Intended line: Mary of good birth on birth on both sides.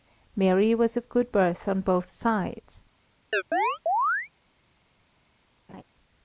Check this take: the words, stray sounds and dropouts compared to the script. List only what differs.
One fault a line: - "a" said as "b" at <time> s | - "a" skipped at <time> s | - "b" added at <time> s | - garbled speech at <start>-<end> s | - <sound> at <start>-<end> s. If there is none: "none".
- "was" added at 0.7 s
- "birth on" skipped at 1.8 s
- chirp at 3.3-4.3 s
- laugh at 5.7-5.8 s